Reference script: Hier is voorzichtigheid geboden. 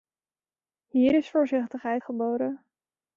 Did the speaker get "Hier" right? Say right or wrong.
right